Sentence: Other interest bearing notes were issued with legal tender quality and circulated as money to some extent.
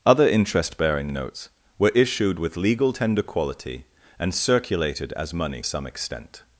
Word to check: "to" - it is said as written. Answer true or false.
false